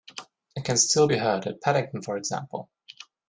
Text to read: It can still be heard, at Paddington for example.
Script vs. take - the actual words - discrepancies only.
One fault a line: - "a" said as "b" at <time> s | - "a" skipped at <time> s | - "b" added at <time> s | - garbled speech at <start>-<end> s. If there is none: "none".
none